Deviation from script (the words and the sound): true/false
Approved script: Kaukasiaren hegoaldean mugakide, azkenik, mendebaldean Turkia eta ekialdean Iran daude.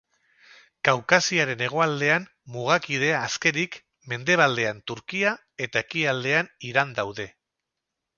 false